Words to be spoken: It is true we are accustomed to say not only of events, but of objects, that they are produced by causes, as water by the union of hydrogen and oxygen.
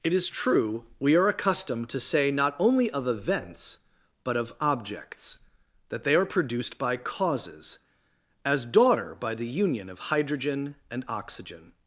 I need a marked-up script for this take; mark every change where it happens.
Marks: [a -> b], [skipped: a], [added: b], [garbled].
It is true we are accustomed to say not only of events, but of objects, that they are produced by causes, as [water -> daughter] by the union of hydrogen and oxygen.